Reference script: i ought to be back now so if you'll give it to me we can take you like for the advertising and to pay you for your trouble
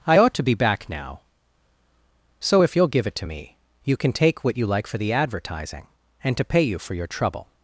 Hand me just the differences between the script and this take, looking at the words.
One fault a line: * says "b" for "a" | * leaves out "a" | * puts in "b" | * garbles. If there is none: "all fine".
* says "you" for "we"
* puts in "what"